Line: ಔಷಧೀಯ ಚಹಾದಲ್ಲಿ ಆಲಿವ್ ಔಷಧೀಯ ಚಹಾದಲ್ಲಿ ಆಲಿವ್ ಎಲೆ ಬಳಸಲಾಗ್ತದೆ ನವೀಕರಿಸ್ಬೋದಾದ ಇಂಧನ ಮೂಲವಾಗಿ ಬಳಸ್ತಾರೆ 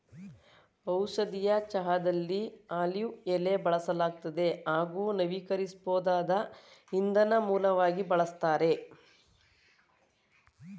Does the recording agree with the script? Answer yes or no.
no